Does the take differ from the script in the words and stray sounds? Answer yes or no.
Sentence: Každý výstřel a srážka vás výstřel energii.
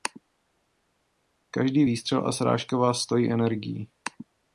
yes